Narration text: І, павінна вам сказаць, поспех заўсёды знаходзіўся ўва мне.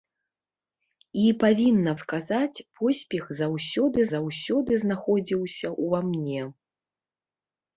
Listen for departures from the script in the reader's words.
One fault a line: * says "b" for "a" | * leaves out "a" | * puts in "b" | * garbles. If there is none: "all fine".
* leaves out "вам"
* puts in "заўсёды"